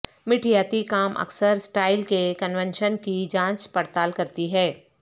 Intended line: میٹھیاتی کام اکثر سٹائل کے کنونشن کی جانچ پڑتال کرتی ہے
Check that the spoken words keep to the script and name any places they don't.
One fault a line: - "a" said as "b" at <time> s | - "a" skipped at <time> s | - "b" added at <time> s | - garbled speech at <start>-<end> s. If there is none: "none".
none